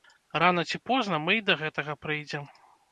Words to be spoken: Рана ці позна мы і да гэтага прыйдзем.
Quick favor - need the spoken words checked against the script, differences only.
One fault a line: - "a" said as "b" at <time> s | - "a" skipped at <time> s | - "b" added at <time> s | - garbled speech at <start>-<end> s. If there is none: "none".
none